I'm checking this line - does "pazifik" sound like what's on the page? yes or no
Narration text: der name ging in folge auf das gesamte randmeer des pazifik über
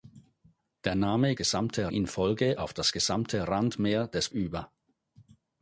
no